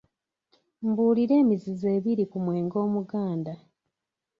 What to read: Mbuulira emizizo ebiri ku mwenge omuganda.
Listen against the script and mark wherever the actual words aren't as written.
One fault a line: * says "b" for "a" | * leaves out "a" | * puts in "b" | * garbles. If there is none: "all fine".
all fine